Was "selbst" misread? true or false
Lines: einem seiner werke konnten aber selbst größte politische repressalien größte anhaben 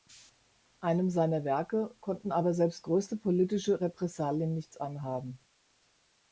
false